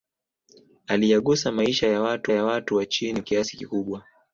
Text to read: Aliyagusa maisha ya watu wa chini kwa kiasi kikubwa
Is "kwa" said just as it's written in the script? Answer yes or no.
no